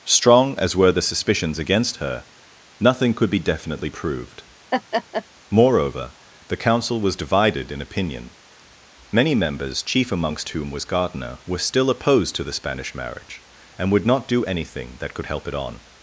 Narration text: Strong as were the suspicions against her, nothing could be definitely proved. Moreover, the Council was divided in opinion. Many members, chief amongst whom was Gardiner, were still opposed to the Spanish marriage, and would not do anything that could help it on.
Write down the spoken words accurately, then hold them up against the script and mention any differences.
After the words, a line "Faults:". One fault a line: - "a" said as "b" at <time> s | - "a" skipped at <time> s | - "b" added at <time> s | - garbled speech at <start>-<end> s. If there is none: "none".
Strong as were the suspicions against her, nothing could be definitely proved. Moreover, the Council was divided in opinion. Many members, chief amongst whom was Gardiner, were still opposed to the Spanish marriage, and would not do anything that could help it on.
Faults:
none